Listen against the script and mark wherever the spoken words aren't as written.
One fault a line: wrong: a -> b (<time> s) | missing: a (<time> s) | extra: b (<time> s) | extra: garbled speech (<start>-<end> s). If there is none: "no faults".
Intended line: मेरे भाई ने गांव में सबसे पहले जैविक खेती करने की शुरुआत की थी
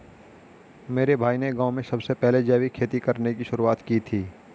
no faults